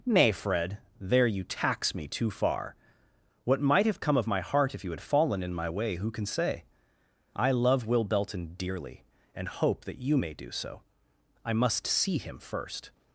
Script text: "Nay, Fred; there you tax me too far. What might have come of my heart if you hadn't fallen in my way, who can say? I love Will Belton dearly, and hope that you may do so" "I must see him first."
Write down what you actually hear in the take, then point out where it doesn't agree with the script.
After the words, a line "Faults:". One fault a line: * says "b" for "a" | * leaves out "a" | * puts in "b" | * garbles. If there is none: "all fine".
"Nay, Fred; there you tax me too far. What might have come of my heart if you had fallen in my way, who can say? I love Will Belton dearly, and hope that you may do so" "I must see him first."
Faults:
* says "had" for "hadn't"